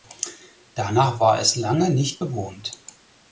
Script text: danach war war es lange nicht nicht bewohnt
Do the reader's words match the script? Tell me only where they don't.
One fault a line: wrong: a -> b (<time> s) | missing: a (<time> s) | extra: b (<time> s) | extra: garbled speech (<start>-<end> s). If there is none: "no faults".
missing: war (1.4 s)
missing: nicht (2.2 s)